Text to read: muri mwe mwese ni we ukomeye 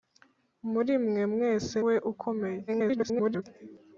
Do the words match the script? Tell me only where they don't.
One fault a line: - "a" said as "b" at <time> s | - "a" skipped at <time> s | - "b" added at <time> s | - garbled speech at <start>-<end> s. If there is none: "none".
- "ni" skipped at 1.8 s
- garbled speech at 2.7-3.4 s